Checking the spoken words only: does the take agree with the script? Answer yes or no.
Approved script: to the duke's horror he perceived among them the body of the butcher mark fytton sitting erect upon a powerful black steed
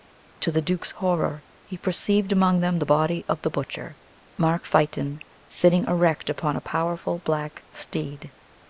yes